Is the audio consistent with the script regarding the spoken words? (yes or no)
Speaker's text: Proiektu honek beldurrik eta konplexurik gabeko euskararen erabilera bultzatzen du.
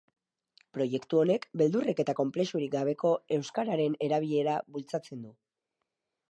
yes